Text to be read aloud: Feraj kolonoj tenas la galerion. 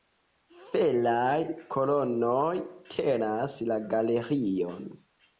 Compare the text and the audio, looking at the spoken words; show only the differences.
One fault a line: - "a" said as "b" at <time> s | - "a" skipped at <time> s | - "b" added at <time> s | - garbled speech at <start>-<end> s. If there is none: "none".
none